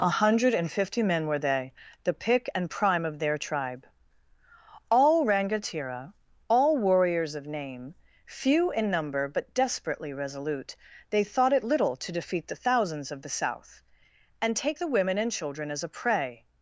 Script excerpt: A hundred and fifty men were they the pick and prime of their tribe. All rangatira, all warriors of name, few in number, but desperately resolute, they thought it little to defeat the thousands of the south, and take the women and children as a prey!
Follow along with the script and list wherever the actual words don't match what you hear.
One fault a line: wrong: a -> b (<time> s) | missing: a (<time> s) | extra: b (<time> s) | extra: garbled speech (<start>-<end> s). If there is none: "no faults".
no faults